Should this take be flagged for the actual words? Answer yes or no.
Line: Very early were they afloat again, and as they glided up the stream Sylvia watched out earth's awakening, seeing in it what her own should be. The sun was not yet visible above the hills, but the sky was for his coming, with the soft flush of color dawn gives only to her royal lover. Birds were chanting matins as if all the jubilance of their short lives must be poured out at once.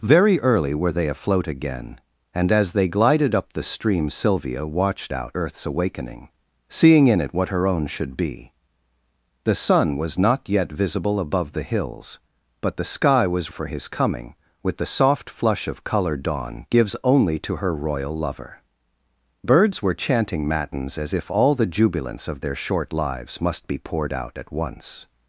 no